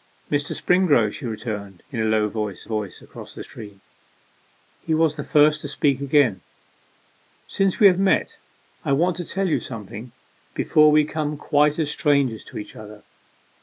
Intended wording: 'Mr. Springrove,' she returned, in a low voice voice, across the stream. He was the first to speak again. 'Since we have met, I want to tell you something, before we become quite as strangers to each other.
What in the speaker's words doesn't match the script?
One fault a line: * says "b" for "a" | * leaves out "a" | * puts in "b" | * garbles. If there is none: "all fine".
all fine